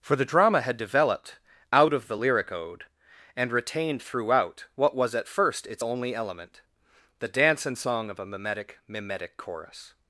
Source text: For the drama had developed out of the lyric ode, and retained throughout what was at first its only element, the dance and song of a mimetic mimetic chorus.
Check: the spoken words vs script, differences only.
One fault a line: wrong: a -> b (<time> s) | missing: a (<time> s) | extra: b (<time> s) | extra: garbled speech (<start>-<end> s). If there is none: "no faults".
no faults